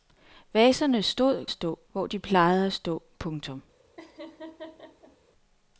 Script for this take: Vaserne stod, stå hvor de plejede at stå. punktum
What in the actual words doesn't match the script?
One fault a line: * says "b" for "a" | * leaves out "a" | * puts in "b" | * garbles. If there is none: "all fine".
all fine